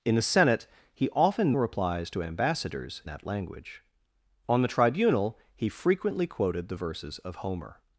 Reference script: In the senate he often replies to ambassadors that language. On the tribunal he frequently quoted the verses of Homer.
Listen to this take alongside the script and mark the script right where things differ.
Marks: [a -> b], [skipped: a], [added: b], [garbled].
In the senate he often replies to ambassadors that language. On the tribunal he frequently quoted the verses of Homer.